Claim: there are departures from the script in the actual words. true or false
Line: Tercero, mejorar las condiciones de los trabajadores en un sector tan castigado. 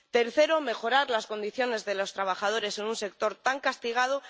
false